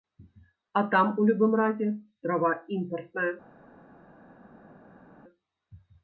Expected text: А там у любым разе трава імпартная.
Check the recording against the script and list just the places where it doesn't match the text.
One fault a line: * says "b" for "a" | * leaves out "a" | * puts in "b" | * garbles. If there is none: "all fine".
all fine